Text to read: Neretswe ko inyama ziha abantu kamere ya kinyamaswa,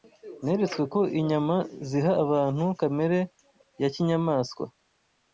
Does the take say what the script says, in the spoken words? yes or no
yes